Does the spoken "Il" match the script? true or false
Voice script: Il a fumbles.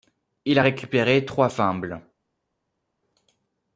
true